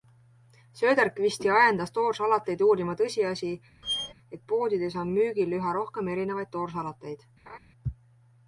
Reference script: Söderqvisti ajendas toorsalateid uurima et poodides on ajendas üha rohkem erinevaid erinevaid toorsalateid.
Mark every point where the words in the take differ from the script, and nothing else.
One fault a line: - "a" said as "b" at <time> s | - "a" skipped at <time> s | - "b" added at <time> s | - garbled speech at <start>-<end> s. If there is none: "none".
- "tõsiasi" added at 3.0 s
- "ajendas" said as "müügil" at 5.2 s
- "erinevaid" skipped at 6.5 s